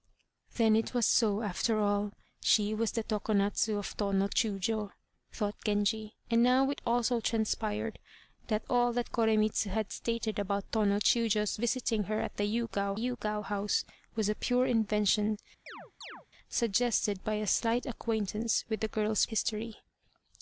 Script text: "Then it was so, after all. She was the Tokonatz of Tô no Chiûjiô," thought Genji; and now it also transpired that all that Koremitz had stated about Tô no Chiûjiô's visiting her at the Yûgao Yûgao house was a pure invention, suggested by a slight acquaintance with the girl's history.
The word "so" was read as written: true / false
true